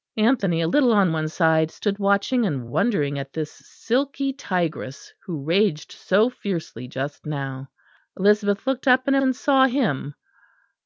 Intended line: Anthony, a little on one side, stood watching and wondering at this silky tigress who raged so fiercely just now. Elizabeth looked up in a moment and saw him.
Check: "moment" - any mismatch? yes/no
yes